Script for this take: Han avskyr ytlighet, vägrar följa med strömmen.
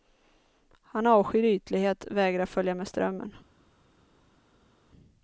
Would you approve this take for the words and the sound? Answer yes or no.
yes